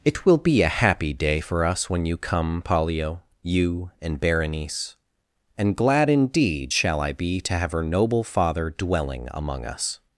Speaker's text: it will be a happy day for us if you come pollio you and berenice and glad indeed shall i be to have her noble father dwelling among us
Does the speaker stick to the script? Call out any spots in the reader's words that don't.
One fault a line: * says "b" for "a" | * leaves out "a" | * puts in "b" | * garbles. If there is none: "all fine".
* says "when" for "if"